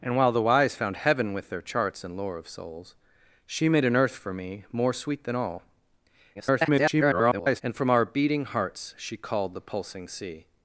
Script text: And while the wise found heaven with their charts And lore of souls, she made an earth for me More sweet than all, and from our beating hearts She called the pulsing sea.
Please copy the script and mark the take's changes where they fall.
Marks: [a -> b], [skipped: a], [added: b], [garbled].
And while the wise found heaven with their charts And lore of souls, she made an earth for me More sweet than all, [garbled] and from our beating hearts She called the pulsing sea.